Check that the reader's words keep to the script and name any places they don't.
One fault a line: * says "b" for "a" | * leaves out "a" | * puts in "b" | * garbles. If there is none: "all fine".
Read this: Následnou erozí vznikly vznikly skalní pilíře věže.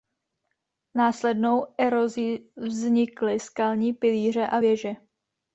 * leaves out "vznikly"
* puts in "a"